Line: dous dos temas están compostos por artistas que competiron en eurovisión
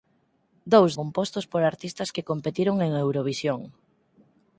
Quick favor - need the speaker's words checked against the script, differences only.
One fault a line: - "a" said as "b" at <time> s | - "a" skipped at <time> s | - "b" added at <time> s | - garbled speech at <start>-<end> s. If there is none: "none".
- "dos temas están" skipped at 0.9 s